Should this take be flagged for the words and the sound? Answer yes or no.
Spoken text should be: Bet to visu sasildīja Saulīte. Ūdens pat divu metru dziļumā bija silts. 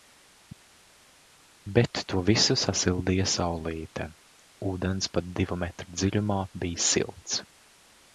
no